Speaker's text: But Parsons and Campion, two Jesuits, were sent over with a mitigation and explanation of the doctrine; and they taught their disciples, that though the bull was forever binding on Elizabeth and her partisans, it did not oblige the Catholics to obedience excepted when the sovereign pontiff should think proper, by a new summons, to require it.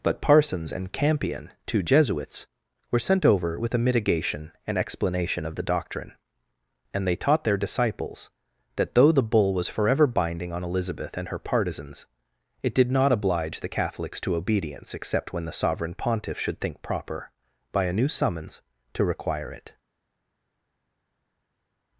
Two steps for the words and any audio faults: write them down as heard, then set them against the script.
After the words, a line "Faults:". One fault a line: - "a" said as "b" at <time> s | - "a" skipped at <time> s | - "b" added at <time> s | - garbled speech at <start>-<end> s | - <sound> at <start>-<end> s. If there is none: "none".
But Parsons and Campion, two Jesuits, were sent over with a mitigation and explanation of the doctrine; and they taught their disciples, that though the bull was forever binding on Elizabeth and her partisans, it did not oblige the Catholics to obedience except when the sovereign pontiff should think proper, by a new summons, to require it.
Faults:
- "excepted" said as "except" at 14.9 s